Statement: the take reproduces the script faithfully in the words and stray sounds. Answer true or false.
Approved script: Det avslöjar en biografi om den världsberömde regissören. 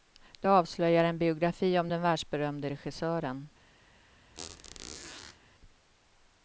false